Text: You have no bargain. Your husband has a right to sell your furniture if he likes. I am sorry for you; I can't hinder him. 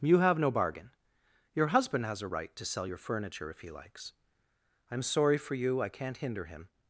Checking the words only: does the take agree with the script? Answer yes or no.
yes